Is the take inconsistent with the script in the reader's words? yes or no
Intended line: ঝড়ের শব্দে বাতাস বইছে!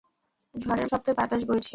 no